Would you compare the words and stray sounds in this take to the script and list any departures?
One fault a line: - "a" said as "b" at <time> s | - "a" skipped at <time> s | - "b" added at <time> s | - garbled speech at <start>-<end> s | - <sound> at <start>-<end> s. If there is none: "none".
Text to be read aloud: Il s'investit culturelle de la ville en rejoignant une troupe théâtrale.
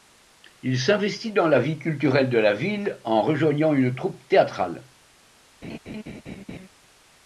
- "dans la vie" added at 1.3 s
- laugh at 5.6-6.7 s